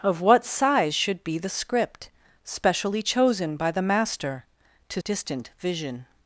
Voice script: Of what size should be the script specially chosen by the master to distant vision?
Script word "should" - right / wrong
right